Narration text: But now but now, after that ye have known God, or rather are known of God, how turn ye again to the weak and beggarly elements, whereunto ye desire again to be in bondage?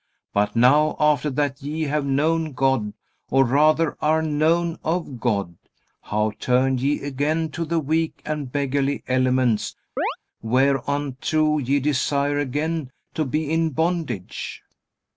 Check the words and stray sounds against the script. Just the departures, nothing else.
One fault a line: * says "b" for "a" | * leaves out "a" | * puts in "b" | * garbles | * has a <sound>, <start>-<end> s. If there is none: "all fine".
* leaves out "but now"
* has a chirp, 10.0-10.2 s